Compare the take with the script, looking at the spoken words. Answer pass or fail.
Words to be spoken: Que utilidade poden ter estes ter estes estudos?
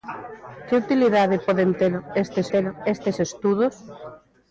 pass